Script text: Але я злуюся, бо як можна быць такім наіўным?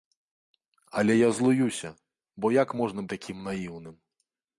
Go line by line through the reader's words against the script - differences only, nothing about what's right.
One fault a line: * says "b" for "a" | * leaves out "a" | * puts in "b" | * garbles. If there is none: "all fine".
* leaves out "быць"